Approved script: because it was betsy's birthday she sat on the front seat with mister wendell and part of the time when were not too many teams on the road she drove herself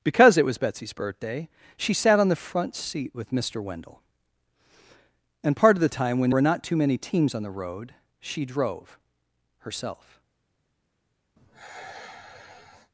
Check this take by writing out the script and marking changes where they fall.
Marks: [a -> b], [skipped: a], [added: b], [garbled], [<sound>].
because it was betsy's birthday she sat on the front seat with mister wendell and part of the time when were not too many teams on the road she drove herself [sigh]